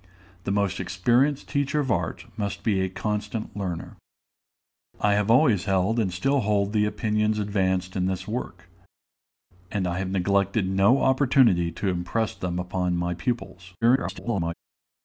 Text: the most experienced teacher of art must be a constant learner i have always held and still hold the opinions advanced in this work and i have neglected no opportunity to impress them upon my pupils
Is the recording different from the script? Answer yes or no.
yes